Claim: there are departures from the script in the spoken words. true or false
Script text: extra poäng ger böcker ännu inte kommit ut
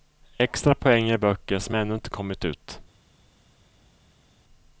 true